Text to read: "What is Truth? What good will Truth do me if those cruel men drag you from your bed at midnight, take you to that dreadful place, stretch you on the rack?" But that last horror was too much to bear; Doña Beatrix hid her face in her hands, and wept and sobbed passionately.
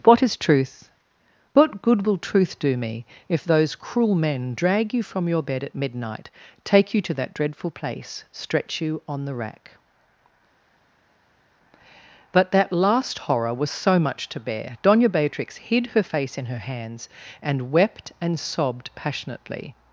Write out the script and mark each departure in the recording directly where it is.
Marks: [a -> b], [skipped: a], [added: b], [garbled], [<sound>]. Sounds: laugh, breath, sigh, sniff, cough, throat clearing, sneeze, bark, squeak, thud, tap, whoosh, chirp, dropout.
"What is Truth? What good will Truth do me if those cruel men drag you from your bed at midnight, take you to that dreadful place, stretch you on the rack?" But that last horror was [too -> so] much to bear; Doña Beatrix hid her face in her hands, and wept and sobbed passionately.